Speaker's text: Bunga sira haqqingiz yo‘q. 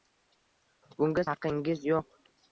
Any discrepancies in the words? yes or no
yes